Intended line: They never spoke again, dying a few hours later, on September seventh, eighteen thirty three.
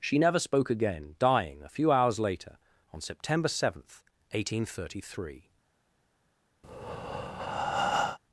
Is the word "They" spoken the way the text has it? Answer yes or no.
no